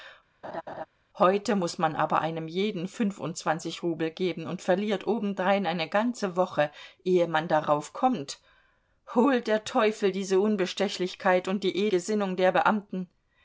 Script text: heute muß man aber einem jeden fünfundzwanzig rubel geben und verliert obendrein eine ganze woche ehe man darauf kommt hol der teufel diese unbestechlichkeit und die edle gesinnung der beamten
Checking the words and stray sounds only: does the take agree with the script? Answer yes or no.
no